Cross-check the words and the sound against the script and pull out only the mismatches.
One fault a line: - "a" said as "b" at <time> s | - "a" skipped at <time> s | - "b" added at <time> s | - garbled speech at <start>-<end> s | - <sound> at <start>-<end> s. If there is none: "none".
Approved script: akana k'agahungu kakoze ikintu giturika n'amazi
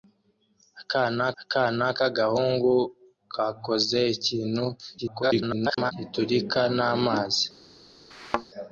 - "akana" added at 1.4 s
- garbled speech at 5.0-5.9 s
- thud at 8.1-8.5 s